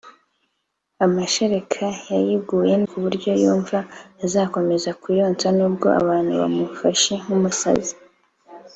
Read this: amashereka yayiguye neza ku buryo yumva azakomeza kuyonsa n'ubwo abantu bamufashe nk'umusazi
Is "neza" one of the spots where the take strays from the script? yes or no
yes